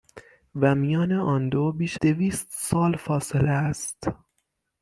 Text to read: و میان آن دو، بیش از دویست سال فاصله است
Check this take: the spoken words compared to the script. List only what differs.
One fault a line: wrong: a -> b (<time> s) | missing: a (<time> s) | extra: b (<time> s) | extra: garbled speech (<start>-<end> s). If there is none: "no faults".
missing: از (2.0 s)